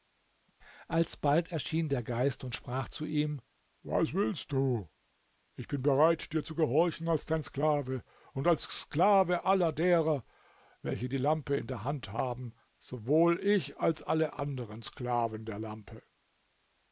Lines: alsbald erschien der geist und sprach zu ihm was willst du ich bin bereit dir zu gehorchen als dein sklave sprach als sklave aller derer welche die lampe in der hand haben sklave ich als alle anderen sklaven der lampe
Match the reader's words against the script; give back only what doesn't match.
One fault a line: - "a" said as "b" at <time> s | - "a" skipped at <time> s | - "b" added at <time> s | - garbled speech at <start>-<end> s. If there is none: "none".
- "sprach" said as "und" at 8.3 s
- "sklave" said as "sowohl" at 12.8 s